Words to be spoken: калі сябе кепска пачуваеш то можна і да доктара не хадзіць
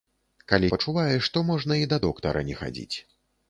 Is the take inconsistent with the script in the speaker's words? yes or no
yes